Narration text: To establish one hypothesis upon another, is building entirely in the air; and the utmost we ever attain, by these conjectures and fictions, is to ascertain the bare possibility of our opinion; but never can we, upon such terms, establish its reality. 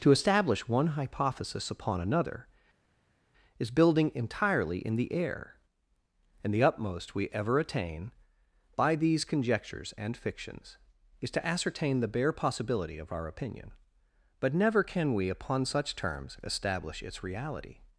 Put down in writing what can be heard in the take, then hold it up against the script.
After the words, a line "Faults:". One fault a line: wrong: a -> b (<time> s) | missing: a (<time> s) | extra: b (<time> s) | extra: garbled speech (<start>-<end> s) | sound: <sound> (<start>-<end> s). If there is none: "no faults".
To establish one hypothesis upon another, is building entirely in the air; and the utmost we ever attain, by these conjectures and fictions, is to ascertain the bare possibility of our opinion; but never can we, upon such terms, establish its reality.
Faults:
no faults